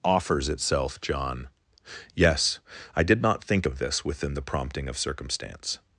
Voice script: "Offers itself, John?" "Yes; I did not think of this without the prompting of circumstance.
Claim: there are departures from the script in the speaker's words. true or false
true